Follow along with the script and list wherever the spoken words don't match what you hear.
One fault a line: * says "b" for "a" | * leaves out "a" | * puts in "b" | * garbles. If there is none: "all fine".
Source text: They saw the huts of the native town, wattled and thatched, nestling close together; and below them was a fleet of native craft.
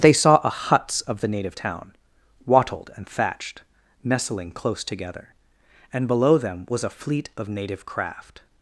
* says "a" for "the"